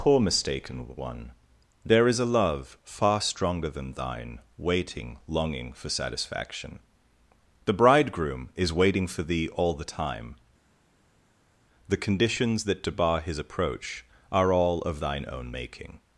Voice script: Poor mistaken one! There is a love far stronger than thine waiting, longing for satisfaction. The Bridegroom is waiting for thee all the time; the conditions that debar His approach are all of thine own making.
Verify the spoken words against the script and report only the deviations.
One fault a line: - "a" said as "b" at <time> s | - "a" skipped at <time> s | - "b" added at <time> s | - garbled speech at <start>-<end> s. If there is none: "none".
none